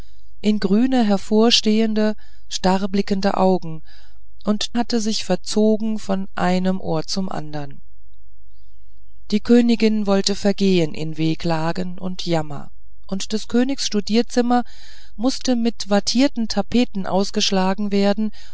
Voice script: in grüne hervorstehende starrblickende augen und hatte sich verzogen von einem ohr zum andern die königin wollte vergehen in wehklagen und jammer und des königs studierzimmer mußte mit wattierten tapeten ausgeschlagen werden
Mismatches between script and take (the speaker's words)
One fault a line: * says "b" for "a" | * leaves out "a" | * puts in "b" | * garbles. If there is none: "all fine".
all fine